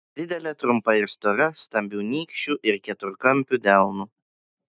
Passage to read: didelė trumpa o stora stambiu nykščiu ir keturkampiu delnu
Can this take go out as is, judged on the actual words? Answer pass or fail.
fail